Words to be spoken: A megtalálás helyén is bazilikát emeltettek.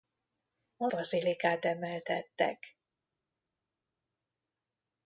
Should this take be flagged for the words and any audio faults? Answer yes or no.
yes